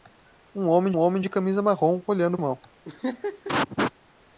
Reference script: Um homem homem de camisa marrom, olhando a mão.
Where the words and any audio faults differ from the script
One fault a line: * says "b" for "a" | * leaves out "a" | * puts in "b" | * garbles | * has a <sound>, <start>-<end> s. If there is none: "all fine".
* has a laugh, 2.8-3.9 s